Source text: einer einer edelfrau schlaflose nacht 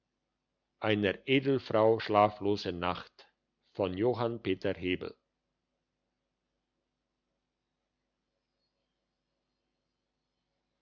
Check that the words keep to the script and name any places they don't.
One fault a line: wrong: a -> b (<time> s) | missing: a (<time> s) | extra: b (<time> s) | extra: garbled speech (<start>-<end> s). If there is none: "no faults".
missing: einer (1.3 s)